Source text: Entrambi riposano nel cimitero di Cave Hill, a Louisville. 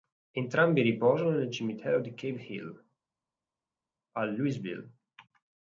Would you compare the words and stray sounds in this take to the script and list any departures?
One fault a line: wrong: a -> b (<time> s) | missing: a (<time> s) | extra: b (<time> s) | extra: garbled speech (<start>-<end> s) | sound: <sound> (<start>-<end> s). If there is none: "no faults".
no faults